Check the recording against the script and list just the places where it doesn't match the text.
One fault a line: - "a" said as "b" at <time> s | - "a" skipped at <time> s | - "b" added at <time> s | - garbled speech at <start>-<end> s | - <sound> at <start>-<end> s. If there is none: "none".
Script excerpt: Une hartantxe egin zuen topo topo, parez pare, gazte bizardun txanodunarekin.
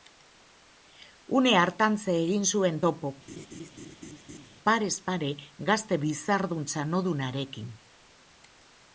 - "topo" skipped at 3.1 s
- laugh at 3.3-4.5 s